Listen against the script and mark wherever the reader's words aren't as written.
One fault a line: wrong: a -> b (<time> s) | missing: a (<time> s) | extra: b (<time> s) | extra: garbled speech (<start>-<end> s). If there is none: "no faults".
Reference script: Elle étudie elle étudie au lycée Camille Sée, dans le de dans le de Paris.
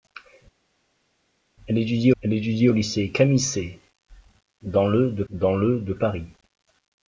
no faults